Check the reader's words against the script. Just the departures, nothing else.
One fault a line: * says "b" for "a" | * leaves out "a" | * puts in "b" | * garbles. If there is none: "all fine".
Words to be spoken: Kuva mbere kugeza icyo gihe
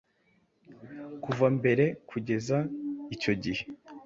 all fine